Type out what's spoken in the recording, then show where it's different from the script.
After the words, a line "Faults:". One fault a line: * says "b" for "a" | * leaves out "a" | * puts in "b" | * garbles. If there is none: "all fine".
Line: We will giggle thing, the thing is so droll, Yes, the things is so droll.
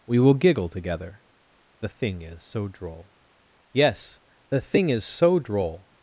We will giggle together, the thing is so droll, Yes, the thing is so droll.
Faults:
* says "together" for "thing"
* says "thing" for "things"